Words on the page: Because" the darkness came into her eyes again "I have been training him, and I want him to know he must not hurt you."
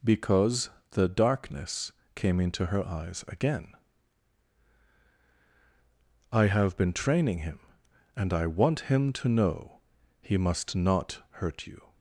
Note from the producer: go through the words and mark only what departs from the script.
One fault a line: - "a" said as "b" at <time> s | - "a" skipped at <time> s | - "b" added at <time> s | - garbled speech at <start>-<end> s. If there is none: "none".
none